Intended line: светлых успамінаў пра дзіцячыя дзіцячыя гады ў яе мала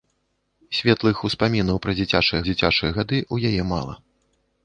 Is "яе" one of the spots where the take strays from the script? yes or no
no